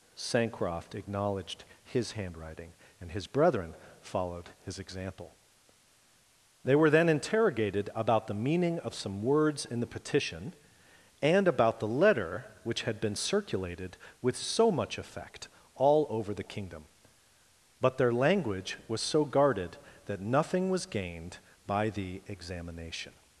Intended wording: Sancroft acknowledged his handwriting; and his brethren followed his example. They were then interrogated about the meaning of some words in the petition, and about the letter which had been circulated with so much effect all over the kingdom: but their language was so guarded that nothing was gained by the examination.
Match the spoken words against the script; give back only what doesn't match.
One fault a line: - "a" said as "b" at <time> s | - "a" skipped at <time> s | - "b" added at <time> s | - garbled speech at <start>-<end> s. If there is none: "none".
none